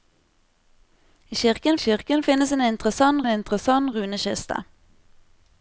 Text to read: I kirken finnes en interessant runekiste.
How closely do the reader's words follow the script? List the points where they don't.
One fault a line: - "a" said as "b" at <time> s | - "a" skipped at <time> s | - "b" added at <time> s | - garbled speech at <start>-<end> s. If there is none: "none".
- "kirken" added at 1.8 s
- "interessant" added at 3.3 s